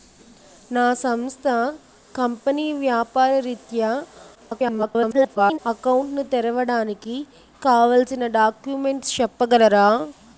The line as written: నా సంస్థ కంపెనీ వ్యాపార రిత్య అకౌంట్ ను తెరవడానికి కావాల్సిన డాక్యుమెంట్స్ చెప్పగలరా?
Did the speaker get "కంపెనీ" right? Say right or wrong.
right